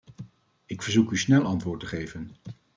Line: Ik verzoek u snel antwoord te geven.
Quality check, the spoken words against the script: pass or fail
pass